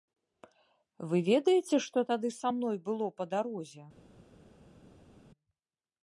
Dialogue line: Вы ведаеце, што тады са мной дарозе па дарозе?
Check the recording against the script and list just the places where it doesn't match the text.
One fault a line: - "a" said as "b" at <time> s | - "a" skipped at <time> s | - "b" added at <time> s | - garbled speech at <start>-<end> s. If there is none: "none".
- "дарозе" said as "было" at 2.9 s